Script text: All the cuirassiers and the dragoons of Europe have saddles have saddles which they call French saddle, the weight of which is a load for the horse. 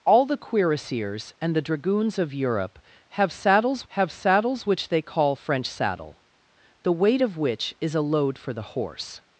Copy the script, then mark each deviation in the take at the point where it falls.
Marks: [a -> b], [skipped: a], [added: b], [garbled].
All the cuirassiers and the dragoons of Europe have saddles have saddles which they call French saddle, the weight of which is a load for the horse.